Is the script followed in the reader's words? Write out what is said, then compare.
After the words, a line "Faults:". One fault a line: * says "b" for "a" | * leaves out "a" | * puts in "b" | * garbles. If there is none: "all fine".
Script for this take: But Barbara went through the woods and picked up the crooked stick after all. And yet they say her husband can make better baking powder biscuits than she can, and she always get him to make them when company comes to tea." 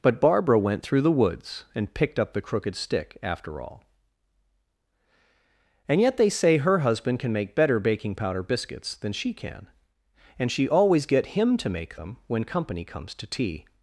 But Barbara went through the woods and picked up the crooked stick after all. And yet they say her husband can make better baking powder biscuits than she can, and she always get him to make them when company comes to tea."
Faults:
all fine